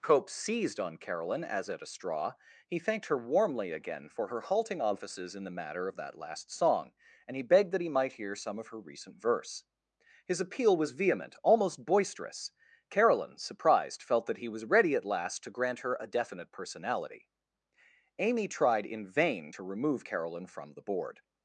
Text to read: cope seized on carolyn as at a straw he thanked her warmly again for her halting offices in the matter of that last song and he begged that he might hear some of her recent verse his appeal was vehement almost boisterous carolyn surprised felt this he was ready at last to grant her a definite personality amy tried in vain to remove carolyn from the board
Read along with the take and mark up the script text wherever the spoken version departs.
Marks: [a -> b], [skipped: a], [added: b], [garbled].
cope seized on carolyn as at a straw he thanked her warmly again for her halting offices in the matter of that last song and he begged that he might hear some of her recent verse his appeal was vehement almost boisterous carolyn surprised felt [this -> that] he was ready at last to grant her a definite personality amy tried in vain to remove carolyn from the board